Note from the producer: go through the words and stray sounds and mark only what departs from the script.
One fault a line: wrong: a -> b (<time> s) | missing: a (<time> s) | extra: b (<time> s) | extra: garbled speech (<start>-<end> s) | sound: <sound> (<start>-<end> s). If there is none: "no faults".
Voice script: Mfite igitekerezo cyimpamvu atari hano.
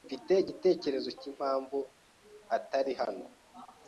no faults